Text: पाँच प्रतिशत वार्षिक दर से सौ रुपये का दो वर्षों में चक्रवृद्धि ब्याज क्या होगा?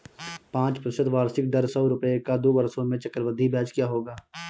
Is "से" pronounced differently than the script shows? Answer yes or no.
yes